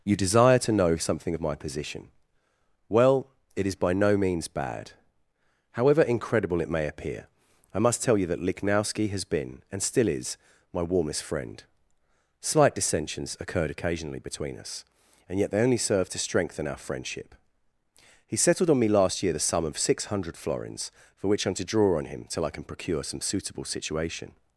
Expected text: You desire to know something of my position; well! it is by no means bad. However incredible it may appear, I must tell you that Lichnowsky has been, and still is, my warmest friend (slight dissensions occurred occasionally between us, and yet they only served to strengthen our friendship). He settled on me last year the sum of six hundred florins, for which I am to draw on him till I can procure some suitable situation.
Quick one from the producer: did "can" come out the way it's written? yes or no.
yes